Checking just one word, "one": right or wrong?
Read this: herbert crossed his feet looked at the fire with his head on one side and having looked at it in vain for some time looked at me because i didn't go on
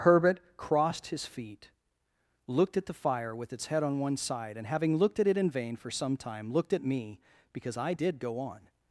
right